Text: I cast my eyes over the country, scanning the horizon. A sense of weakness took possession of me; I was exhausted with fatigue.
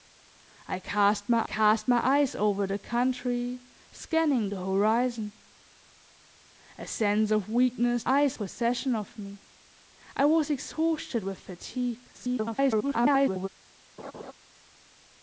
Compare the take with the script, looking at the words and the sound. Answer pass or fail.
fail